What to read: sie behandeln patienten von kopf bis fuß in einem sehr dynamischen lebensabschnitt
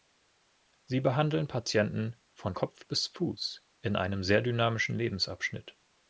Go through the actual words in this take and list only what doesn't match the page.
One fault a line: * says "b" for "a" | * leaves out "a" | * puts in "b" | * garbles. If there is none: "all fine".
all fine